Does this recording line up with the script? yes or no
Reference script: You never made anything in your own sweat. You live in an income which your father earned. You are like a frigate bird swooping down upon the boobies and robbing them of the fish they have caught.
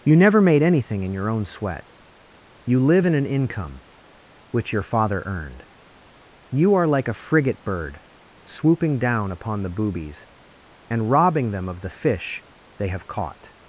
yes